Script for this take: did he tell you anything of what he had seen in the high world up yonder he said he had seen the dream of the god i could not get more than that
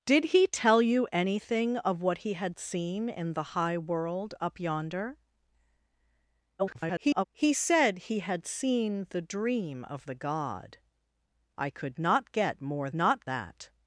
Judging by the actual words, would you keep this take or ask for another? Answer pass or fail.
fail